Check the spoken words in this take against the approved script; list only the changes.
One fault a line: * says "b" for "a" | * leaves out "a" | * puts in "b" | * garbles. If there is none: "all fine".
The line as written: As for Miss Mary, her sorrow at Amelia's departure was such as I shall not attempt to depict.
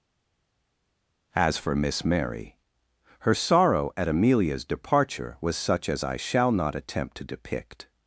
all fine